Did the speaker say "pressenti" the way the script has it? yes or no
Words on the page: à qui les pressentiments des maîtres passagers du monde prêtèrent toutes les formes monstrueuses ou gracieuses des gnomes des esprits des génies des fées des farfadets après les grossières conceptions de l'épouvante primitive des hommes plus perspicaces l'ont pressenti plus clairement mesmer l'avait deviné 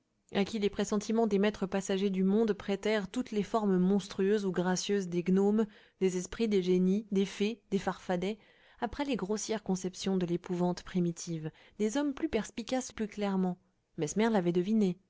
no